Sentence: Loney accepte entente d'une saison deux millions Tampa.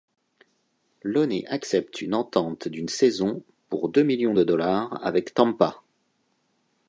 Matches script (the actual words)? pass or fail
fail